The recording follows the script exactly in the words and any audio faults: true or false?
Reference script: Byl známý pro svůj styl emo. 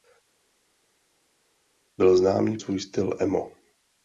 false